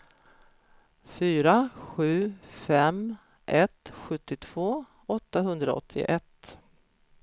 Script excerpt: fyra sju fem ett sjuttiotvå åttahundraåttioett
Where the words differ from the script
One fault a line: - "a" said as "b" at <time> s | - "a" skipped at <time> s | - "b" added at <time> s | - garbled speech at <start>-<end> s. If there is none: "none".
none